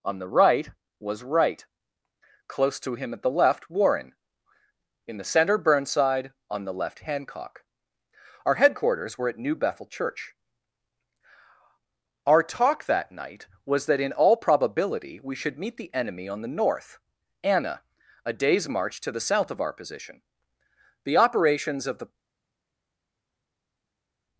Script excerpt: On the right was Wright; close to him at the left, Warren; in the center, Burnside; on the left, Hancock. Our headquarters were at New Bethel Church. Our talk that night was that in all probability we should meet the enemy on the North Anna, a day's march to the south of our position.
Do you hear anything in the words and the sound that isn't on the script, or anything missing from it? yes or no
yes